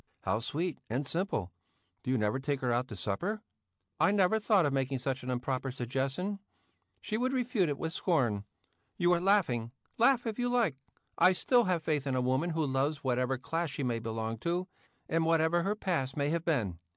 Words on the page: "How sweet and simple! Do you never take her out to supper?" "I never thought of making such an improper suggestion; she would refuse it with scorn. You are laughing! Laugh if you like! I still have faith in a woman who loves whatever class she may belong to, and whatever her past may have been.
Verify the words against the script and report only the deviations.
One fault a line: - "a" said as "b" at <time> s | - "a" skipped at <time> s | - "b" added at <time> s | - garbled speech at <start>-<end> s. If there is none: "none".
none